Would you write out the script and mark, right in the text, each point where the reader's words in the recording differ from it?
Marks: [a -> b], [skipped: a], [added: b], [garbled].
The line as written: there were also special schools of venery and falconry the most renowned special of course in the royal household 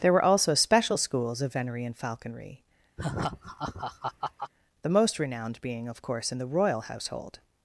there were also special schools of venery and falconry the most renowned [special -> being] of course in the royal household